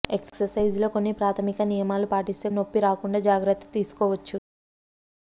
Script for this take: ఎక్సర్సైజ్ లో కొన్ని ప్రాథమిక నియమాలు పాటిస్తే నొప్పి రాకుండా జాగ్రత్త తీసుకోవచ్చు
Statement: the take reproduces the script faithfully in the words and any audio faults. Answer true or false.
true